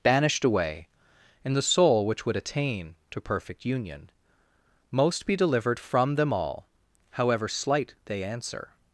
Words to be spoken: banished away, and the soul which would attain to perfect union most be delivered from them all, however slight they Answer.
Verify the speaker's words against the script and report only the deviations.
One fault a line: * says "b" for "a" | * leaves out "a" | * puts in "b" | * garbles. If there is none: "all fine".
all fine